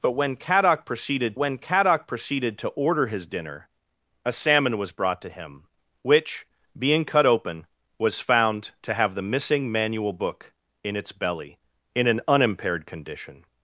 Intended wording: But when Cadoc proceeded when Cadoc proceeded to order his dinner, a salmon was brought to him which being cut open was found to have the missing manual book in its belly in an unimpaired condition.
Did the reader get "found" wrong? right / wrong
right